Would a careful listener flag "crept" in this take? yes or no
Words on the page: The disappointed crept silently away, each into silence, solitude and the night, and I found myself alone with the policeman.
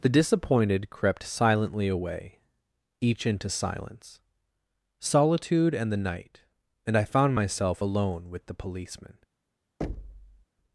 no